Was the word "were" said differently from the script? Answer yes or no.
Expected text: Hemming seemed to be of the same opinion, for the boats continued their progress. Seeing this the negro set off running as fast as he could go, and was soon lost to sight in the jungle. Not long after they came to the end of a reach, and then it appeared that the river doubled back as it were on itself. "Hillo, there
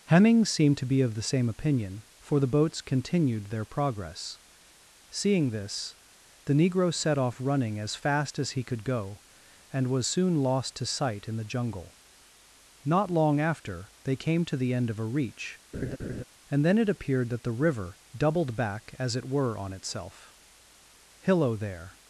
no